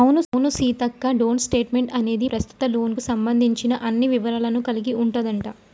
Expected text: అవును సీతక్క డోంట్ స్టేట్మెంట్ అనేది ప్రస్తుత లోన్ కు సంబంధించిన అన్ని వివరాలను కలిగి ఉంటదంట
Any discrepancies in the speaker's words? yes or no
no